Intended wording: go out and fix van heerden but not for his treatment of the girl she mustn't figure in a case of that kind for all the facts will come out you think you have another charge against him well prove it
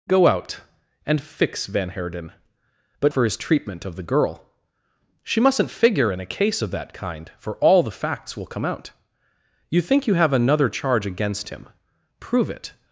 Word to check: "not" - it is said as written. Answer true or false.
false